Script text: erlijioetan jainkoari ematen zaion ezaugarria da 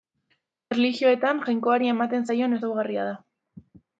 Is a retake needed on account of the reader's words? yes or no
no